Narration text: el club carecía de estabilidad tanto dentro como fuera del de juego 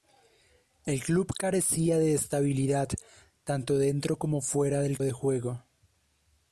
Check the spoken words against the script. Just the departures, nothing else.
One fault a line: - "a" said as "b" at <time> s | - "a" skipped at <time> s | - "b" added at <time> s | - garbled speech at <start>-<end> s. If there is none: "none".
none